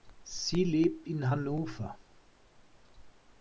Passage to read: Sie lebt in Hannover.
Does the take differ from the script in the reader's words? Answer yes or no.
no